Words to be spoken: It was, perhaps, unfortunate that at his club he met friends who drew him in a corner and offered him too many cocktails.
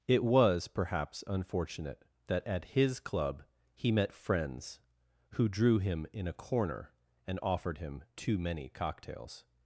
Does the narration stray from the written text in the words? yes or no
no